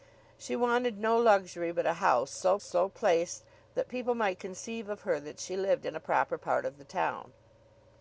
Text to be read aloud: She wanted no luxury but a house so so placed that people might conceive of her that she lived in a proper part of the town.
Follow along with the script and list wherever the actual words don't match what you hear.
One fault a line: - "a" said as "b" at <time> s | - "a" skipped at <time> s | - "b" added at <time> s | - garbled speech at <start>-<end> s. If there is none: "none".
none